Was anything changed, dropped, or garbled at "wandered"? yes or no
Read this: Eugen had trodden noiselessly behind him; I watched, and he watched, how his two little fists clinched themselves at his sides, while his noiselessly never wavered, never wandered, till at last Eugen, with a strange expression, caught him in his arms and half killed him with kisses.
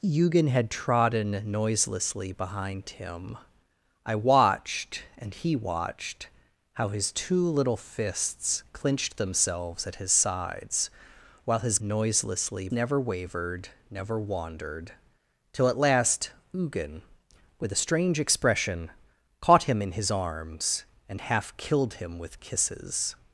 no